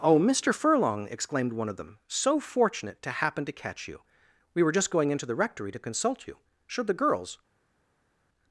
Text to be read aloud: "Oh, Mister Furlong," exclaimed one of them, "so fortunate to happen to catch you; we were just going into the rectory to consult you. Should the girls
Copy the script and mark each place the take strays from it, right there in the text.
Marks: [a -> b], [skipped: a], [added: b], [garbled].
"Oh, Mister Furlong," exclaimed one of them, "so fortunate to happen to catch you; we were just going into the rectory to consult you. Should the girls